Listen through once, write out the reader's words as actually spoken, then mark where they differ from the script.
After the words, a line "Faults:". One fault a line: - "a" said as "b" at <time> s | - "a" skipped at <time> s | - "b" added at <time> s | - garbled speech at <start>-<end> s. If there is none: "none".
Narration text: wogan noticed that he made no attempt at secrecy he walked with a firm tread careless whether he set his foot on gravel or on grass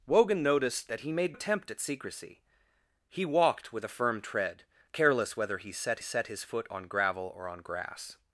wogan noticed that he made attempt at secrecy he walked with a firm tread careless whether he set set his foot on gravel or on grass
Faults:
- "no" skipped at 1.4 s
- "set" added at 6.0 s